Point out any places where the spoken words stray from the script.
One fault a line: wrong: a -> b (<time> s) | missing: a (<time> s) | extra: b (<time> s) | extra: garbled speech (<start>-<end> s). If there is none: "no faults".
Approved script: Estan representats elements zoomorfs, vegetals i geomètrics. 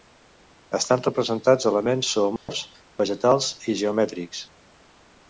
no faults